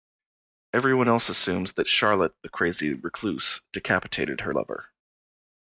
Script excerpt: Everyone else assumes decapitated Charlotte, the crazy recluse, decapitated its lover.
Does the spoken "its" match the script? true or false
false